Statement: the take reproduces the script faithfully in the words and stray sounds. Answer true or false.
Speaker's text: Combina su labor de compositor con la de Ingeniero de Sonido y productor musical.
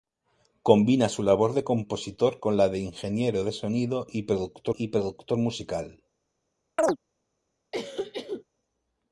false